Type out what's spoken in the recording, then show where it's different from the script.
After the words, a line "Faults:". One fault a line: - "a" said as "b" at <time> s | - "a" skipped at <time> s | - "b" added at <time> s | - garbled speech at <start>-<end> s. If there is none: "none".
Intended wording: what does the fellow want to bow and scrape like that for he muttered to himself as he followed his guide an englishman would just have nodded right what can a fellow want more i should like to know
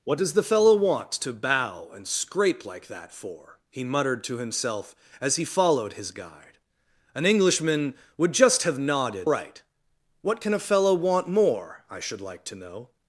what does the fellow want to bow and scrape like that for he muttered to himself as he followed his guide an englishman would just have nodded right what can a fellow want more i should like to know
Faults:
none